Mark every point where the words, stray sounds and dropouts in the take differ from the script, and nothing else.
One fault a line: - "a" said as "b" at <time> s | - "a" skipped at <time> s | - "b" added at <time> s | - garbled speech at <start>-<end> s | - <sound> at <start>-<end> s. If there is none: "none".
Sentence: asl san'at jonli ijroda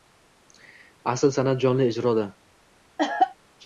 - cough at 3.0-3.4 s